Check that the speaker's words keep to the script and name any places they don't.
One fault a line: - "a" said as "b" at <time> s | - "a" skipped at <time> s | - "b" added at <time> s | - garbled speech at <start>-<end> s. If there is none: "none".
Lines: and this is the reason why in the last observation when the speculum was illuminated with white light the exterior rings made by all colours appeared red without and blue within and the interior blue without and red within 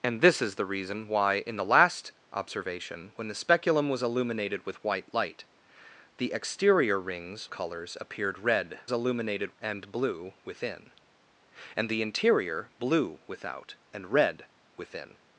- "made by all" skipped at 7.5 s
- "without" said as "illuminated" at 8.9 s